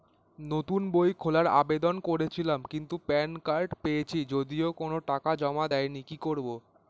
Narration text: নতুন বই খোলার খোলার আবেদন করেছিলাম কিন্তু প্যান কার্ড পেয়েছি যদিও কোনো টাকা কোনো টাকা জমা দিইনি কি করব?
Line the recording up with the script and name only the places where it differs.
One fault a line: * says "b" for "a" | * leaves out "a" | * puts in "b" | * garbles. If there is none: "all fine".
* leaves out "খোলার"
* leaves out "কোনো টাকা"